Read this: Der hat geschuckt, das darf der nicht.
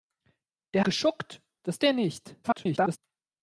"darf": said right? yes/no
no